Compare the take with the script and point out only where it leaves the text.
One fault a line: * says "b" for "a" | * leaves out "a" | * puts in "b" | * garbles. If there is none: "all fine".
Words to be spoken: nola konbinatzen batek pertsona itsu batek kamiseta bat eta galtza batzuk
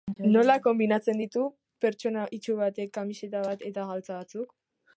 * says "ditu" for "batek"